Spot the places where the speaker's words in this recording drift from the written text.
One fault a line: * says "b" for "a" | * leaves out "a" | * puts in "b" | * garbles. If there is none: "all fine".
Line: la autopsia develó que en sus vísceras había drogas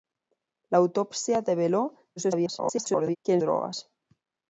* garbles
* leaves out "sus vísceras había"